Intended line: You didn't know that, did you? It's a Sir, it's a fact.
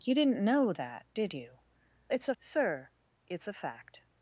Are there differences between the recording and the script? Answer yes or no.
no